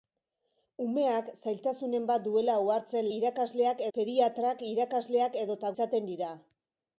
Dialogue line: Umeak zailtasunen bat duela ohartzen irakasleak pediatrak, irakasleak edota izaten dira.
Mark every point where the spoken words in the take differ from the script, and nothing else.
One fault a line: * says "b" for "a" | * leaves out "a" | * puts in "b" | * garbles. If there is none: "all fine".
all fine